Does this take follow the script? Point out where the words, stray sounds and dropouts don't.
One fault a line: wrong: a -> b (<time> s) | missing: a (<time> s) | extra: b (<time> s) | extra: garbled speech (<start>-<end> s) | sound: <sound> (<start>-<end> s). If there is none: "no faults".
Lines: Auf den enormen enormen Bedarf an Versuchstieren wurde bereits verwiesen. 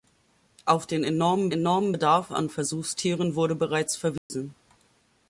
sound: dropout (4.2-4.3 s)